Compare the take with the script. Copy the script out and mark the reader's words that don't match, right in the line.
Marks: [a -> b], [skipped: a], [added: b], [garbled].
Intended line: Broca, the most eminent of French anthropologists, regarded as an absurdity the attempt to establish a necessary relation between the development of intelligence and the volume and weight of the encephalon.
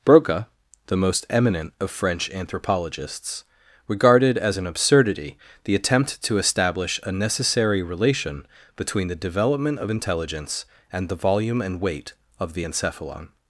Broca, the most eminent of French anthropologists, regarded as an absurdity the attempt to establish a necessary relation between the development of intelligence and the volume and weight of the encephalon.